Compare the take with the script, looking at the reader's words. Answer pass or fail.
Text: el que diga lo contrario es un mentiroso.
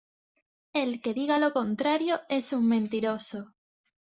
pass